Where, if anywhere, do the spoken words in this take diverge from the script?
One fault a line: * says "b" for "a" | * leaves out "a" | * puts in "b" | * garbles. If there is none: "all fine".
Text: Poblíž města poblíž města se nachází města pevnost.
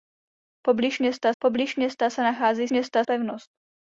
all fine